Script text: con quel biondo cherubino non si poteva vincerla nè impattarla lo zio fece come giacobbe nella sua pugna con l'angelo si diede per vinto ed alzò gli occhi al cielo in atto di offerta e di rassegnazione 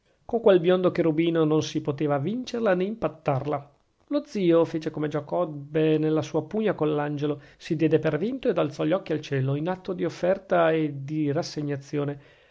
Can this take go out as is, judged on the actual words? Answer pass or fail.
pass